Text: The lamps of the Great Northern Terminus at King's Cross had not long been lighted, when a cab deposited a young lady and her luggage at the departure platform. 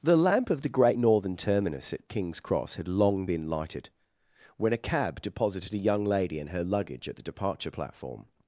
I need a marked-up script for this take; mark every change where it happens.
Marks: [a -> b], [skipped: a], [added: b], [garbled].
The [lamps -> lamp] of the Great Northern Terminus at King's Cross had [skipped: not] long been lighted, when a cab deposited a young lady and her luggage at the departure platform.